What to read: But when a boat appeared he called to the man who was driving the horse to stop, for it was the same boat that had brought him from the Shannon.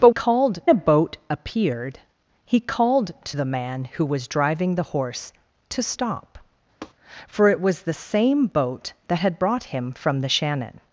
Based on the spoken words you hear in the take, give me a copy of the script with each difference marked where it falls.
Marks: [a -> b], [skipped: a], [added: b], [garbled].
But [when -> called] a boat appeared he called to the man who was driving the horse to stop, for it was the same boat that had brought him from the Shannon.